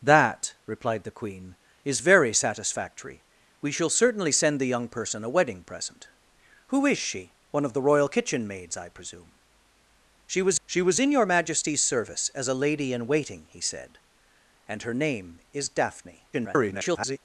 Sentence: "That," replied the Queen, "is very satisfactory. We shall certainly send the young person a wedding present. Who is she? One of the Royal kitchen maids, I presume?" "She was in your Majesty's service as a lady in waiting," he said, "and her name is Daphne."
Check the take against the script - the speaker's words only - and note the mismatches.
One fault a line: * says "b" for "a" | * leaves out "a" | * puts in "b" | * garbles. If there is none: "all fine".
* puts in "she was"
* garbles